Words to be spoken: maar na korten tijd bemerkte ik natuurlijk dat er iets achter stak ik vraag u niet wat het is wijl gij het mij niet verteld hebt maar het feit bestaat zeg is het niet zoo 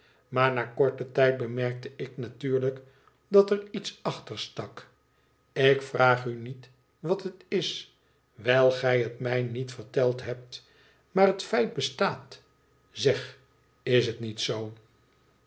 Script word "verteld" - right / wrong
right